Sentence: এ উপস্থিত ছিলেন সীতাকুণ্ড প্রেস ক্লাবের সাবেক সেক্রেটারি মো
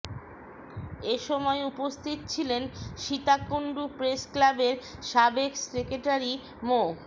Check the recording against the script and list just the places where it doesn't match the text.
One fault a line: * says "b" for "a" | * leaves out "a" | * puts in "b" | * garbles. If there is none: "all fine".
* puts in "সময়"